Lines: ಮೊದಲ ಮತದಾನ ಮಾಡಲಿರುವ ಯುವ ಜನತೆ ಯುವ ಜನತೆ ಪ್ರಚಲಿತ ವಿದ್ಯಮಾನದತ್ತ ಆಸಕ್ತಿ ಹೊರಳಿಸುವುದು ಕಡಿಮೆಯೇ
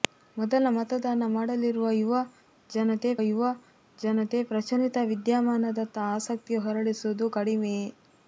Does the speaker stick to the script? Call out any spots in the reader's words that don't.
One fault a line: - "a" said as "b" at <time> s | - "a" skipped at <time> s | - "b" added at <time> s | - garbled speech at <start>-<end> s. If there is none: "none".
none